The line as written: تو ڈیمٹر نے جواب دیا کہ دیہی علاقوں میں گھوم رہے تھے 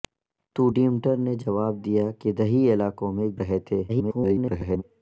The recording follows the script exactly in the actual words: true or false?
false